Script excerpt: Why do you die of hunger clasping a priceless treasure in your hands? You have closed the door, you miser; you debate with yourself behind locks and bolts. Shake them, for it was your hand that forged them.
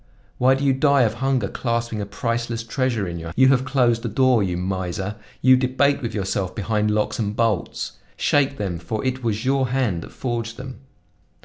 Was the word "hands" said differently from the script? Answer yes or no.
yes